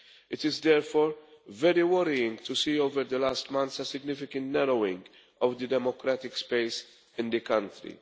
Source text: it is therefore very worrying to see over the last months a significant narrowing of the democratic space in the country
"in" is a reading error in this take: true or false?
false